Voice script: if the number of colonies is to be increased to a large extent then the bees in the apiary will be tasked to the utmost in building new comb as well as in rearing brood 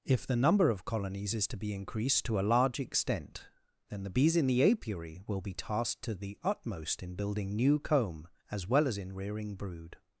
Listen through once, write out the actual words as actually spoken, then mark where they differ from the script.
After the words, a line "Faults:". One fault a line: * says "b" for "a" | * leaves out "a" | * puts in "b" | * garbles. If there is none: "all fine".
if the number of colonies is to be increased to a large extent then the bees in the apiary will be tasked to the utmost in building new comb as well as in rearing brood
Faults:
all fine